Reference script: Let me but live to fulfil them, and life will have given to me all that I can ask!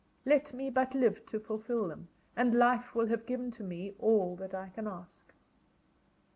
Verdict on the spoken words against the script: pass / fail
pass